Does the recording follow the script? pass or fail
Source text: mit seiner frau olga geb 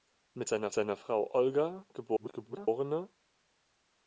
fail